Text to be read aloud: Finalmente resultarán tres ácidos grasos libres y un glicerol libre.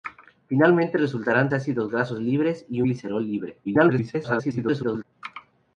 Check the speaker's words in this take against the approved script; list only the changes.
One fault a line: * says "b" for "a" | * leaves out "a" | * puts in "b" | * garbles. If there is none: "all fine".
* leaves out "tres"
* leaves out "un"
* garbles